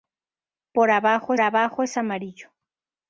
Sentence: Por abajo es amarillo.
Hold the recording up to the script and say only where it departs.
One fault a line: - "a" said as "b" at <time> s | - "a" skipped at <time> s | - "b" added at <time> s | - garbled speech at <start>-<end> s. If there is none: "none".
- "abajo" added at 1.4 s